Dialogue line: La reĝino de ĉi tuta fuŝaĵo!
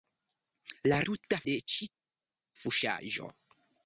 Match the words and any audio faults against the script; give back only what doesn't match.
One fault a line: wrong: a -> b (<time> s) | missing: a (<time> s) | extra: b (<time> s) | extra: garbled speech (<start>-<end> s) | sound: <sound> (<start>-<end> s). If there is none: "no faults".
wrong: reĝino -> tuta (1.1 s)
missing: tuta (1.9 s)